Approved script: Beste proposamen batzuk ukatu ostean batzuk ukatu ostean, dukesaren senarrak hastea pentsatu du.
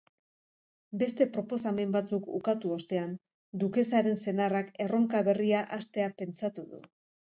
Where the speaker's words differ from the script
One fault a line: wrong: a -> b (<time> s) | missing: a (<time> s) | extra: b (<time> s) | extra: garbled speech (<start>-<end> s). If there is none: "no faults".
wrong: batzuk ukatu ostean dukesaren senarrak -> dukesaren senarrak erronka berria (3.7 s)